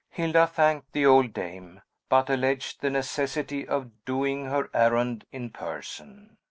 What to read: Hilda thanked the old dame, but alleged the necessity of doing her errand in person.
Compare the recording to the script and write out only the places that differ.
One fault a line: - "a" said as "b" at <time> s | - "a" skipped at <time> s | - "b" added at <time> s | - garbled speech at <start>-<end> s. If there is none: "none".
none